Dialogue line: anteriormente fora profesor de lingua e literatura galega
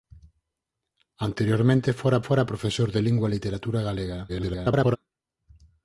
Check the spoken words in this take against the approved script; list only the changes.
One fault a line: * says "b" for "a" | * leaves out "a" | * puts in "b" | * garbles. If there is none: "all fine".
* puts in "fora"
* garbles